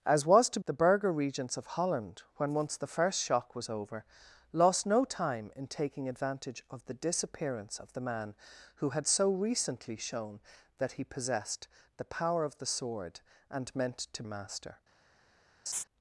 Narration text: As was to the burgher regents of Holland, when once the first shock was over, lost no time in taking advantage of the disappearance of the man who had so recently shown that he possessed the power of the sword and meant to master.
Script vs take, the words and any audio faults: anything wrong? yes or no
yes